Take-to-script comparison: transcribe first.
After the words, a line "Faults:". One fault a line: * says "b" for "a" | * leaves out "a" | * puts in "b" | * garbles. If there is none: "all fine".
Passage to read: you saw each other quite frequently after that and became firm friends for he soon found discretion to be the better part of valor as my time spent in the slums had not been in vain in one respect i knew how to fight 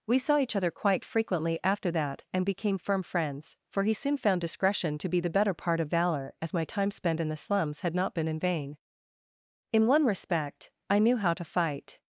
we saw each other quite frequently after that and became firm friends for he soon found discretion to be the better part of valor as my time spent in the slums had not been in vain in one respect i knew how to fight
Faults:
* says "we" for "you"